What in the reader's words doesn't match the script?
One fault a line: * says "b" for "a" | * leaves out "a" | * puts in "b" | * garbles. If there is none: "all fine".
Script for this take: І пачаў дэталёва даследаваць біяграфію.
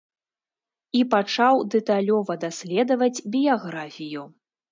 all fine